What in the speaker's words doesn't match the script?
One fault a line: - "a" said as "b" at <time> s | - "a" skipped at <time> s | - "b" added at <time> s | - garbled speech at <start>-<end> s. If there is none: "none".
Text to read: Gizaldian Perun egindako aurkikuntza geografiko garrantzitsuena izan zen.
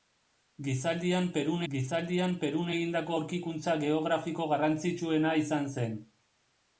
- "gizaldian Perun" added at 1.7 s